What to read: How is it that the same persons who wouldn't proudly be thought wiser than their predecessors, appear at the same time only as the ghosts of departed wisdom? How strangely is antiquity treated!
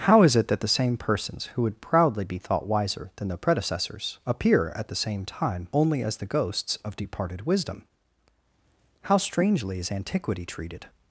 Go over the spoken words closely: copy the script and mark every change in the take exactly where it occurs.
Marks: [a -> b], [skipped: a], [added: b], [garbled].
How is it that the same persons who [wouldn't -> would] proudly be thought wiser than their predecessors, appear at the same time only as the ghosts of departed wisdom? How strangely is antiquity treated!